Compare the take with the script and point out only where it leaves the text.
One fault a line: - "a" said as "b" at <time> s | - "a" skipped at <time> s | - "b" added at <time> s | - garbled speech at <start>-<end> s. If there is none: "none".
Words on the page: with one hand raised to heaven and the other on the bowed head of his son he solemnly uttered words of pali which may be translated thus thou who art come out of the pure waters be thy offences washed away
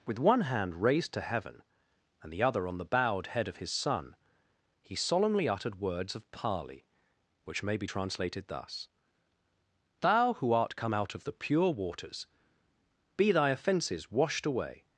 none